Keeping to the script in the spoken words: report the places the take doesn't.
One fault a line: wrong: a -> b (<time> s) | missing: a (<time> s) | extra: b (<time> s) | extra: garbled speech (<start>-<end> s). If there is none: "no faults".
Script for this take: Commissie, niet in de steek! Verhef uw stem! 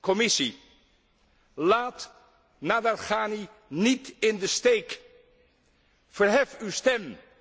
extra: laat Nadarkhani (1.5 s)